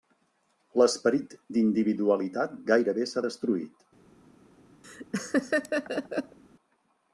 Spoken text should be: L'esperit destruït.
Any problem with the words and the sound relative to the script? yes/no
yes